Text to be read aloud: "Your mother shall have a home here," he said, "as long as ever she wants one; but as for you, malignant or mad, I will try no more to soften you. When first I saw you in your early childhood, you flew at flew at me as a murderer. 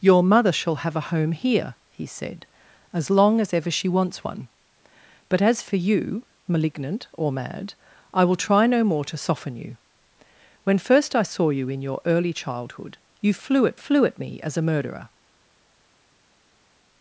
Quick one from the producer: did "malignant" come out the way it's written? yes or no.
yes